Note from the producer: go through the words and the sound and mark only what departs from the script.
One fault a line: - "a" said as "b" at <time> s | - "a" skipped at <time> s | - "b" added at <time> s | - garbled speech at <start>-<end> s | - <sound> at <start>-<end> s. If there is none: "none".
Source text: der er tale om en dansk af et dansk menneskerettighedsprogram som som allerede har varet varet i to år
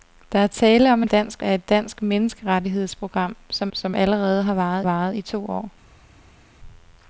none